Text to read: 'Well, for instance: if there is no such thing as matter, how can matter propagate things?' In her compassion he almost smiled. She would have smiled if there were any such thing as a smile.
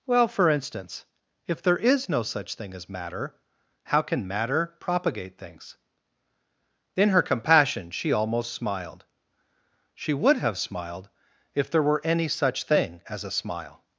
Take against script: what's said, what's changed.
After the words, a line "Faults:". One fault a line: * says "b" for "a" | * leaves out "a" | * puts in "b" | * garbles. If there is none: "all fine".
'Well, for instance: if there is no such thing as matter, how can matter propagate things?' In her compassion she almost smiled. She would have smiled if there were any such thing as a smile.
Faults:
* says "she" for "he"